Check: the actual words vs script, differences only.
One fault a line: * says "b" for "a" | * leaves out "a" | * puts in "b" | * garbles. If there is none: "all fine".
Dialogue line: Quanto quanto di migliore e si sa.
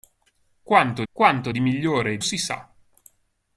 all fine